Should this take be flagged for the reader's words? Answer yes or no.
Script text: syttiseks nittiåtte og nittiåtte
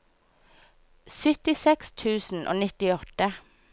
yes